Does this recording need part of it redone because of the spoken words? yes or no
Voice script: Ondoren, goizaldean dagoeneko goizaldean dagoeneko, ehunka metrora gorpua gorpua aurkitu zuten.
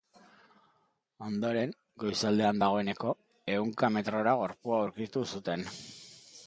yes